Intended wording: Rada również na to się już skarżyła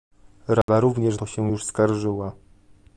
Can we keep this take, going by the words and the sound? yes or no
no